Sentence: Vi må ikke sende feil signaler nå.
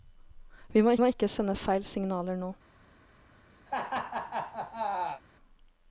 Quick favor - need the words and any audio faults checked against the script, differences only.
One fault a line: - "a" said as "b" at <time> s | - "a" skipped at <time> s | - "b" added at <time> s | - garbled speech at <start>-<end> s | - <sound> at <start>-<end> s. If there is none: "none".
- "må" added at 1.0 s
- laugh at 3.7-5.2 s